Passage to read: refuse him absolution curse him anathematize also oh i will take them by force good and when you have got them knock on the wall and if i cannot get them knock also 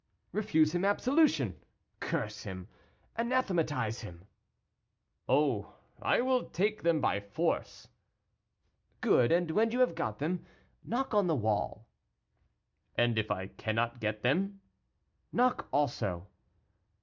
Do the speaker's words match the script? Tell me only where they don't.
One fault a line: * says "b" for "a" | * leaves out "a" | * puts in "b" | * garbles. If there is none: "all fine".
* says "him" for "also"